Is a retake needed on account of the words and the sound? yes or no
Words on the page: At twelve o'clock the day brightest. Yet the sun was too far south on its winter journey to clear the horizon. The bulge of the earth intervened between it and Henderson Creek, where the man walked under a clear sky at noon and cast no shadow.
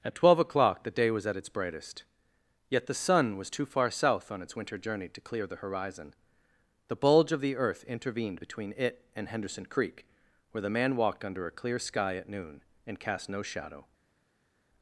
yes